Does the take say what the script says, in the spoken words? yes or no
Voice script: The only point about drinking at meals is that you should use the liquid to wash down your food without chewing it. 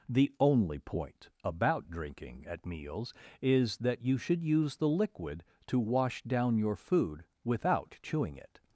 yes